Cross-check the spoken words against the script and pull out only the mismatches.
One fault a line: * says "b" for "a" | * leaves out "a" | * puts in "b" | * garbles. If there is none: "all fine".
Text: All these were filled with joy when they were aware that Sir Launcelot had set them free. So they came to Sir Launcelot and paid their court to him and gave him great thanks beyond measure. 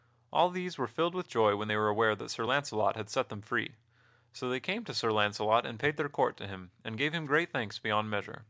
all fine